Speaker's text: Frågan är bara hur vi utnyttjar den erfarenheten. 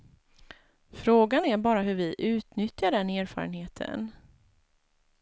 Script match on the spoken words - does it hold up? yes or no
yes